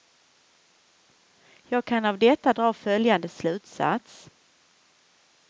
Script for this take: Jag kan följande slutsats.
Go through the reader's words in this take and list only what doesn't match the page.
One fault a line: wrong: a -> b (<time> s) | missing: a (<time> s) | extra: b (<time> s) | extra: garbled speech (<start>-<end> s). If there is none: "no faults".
extra: av detta dra (2.0 s)